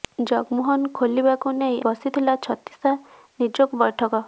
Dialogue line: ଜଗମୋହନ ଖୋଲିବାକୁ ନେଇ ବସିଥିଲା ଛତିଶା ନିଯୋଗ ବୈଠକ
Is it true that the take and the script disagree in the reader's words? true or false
false